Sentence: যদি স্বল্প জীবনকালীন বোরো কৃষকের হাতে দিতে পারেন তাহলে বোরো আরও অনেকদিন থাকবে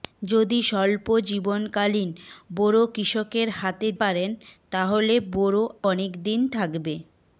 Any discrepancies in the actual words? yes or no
yes